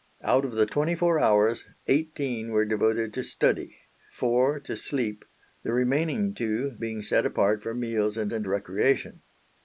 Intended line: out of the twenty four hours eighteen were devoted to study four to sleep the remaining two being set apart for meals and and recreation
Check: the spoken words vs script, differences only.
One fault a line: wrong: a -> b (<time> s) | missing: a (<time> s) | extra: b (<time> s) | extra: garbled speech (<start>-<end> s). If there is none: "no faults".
no faults